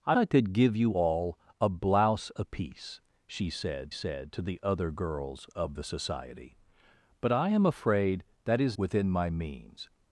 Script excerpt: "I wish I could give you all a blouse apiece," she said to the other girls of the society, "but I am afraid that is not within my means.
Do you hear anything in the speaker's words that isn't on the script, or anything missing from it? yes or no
yes